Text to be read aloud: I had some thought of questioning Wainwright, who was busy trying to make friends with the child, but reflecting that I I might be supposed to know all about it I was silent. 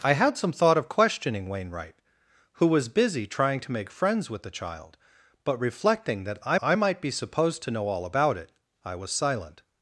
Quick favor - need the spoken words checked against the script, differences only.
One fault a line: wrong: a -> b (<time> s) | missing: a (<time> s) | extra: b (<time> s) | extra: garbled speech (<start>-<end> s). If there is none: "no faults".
no faults